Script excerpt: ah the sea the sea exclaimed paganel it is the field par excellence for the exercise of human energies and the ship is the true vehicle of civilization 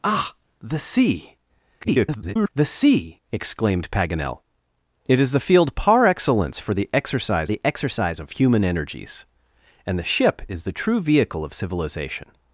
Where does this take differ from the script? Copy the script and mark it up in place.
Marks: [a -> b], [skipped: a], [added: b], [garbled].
ah the sea [garbled] the sea exclaimed paganel it is the field par excellence for the exercise [added: the exercise] of human energies and the ship is the true vehicle of civilization